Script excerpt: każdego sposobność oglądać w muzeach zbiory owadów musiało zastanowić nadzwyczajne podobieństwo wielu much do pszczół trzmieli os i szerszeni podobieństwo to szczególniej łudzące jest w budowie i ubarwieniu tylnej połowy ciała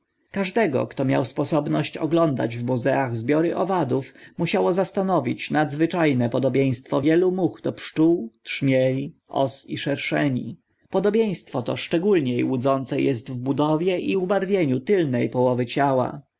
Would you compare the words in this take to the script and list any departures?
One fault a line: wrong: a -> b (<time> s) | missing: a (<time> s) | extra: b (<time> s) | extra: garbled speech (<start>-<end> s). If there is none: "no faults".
extra: kto miał (0.9 s)